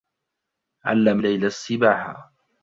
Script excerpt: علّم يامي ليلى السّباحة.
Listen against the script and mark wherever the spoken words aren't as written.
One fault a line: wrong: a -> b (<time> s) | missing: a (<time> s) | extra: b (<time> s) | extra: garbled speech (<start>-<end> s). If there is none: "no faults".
missing: يامي (1.2 s)